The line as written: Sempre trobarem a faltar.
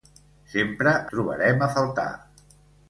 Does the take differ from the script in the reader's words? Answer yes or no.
no